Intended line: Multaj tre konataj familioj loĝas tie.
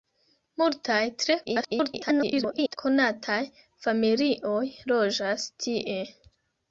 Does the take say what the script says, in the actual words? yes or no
no